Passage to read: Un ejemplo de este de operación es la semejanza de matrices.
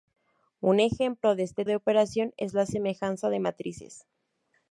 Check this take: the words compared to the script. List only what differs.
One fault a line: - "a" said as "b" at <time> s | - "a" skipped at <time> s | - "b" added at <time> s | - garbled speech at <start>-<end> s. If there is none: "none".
none